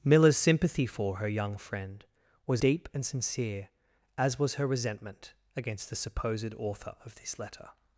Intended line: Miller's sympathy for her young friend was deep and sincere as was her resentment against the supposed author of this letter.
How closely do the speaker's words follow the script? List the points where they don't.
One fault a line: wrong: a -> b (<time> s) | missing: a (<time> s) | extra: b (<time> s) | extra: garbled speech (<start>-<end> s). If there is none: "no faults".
no faults